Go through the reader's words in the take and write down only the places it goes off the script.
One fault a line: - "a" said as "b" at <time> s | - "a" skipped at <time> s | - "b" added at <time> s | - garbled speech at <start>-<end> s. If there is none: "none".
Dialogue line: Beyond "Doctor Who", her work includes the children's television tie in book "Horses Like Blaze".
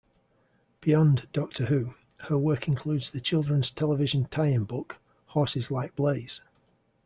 none